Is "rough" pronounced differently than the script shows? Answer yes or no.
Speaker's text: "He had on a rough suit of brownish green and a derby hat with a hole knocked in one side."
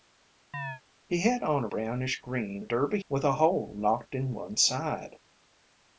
yes